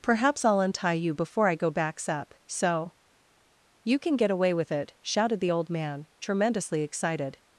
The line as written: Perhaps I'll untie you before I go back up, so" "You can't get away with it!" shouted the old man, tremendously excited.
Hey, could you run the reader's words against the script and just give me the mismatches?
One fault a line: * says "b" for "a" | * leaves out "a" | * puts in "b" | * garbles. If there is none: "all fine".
* says "backs" for "back"
* says "can" for "can't"